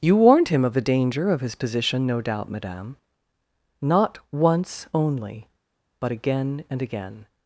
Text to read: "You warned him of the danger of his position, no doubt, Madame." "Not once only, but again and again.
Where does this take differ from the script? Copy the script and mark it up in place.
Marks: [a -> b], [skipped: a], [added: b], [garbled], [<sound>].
"You warned him of the danger of his position, no doubt, Madame." "Not once only, but again and again.